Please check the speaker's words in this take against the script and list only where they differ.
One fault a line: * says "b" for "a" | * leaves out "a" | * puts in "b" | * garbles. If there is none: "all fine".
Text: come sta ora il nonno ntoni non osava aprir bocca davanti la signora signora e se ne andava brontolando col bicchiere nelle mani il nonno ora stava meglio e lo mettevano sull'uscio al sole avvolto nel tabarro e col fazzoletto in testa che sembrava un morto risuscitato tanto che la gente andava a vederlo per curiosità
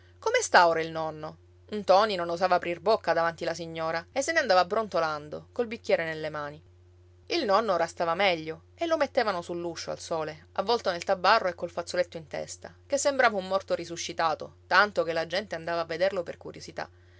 * leaves out "signora"